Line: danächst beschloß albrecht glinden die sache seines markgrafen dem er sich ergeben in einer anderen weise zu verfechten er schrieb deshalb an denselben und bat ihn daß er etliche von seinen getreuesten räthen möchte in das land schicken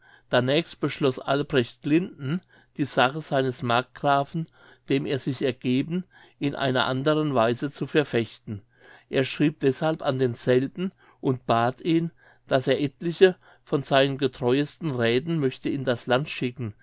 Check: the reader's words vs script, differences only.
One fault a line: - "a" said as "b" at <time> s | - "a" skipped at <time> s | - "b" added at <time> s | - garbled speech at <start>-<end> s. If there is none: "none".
none